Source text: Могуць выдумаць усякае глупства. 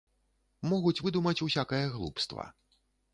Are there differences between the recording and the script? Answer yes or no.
no